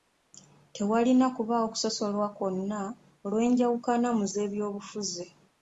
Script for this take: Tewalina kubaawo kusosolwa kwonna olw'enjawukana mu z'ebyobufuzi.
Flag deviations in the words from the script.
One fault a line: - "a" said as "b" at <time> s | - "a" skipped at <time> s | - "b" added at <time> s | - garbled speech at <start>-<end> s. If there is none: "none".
none